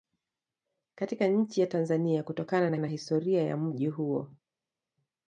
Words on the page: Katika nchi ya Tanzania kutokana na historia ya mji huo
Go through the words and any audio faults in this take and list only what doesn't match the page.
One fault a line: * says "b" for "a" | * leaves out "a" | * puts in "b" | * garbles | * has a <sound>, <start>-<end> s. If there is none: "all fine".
* puts in "na"